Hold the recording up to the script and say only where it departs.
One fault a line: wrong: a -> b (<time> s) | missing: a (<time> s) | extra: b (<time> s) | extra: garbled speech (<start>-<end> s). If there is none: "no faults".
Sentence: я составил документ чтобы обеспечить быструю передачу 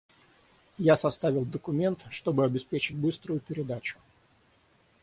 no faults